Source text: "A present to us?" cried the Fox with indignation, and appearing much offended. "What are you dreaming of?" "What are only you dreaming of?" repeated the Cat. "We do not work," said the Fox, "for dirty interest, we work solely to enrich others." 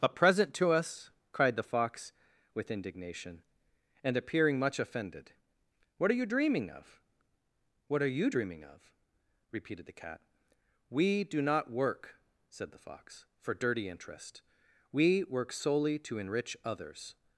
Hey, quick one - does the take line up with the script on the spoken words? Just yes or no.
no